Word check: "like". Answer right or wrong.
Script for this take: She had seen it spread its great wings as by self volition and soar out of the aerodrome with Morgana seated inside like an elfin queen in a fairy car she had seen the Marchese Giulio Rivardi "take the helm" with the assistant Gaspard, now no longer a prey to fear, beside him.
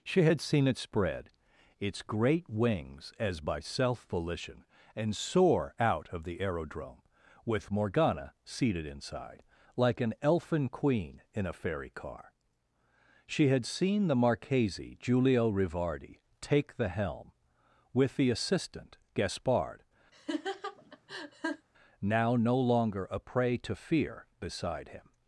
right